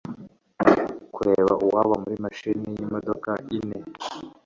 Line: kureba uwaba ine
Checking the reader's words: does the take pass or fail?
fail